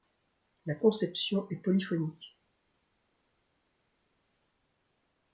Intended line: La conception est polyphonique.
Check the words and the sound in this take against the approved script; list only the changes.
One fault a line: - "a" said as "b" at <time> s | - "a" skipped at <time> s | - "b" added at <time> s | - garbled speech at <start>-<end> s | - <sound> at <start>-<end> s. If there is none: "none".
none